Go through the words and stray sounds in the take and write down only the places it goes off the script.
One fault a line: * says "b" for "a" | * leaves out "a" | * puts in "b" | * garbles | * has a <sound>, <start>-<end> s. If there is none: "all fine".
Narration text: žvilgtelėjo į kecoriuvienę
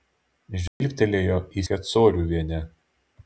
* has a dropout, 0.7-0.8 s